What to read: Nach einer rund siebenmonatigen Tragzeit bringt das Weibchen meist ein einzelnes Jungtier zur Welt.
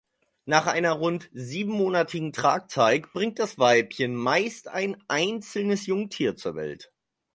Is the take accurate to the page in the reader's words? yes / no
yes